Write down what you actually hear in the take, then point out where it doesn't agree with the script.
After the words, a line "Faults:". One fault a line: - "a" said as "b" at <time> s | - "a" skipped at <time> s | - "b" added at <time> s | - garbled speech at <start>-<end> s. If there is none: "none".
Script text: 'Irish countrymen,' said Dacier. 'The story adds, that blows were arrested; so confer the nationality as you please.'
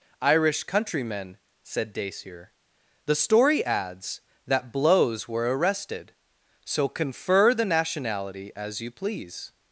'Irish countrymen,' said Dacier. 'The story adds, that blows were arrested; so confer the nationality as you please.'
Faults:
none